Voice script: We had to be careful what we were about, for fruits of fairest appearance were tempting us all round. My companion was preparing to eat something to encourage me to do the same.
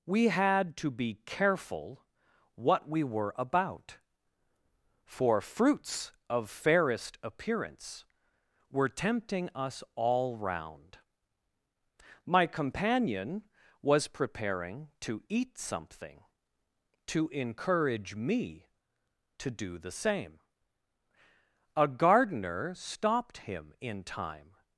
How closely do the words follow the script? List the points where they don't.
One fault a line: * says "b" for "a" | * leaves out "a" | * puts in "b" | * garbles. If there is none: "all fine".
* puts in "A gardener stopped him in time"